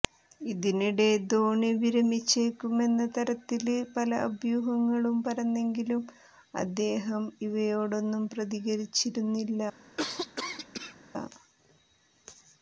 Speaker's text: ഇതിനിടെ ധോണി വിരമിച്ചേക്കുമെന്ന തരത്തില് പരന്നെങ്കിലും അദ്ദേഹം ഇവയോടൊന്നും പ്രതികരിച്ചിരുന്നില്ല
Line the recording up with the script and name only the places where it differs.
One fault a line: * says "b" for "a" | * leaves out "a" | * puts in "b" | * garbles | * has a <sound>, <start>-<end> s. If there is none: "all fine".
* puts in "പല അഭ്യൂഹങ്ങളും"
* has a cough, 10.0-11.0 s